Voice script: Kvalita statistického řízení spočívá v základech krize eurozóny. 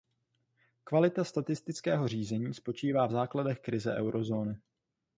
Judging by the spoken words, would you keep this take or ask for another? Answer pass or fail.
pass